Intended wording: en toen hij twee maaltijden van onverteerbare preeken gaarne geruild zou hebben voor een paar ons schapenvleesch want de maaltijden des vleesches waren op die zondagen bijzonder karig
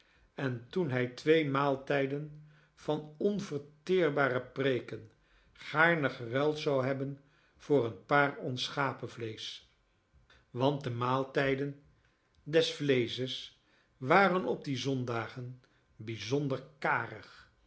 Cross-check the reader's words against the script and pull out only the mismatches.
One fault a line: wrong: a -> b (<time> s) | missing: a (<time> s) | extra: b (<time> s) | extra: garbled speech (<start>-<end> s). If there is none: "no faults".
no faults